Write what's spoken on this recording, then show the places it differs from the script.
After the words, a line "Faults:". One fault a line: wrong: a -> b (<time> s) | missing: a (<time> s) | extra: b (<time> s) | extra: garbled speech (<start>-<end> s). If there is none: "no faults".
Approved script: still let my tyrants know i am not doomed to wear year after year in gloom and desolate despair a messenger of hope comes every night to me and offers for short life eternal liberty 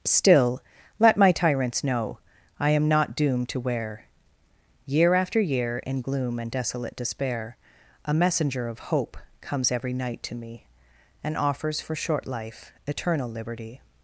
still let my tyrants know i am not doomed to wear year after year in gloom and desolate despair a messenger of hope comes every night to me and offers for short life eternal liberty
Faults:
no faults